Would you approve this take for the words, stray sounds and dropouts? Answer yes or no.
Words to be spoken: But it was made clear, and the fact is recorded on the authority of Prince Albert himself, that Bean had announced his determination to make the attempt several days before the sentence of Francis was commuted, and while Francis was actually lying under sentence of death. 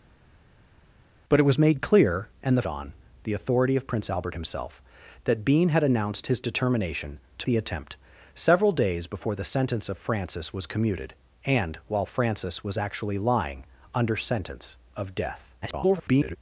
no